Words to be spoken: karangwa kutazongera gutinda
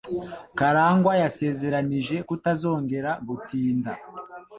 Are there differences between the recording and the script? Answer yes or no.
yes